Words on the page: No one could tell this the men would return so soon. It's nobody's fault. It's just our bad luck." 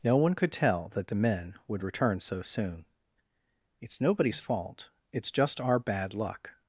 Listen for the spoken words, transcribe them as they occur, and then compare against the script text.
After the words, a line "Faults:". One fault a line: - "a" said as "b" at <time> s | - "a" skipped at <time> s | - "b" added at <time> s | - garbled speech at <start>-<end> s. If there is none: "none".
No one could tell that the men would return so soon. It's nobody's fault. It's just our bad luck."
Faults:
- "this" said as "that" at 0.9 s